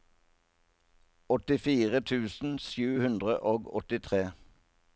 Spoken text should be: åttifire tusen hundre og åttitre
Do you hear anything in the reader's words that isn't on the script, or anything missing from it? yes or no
yes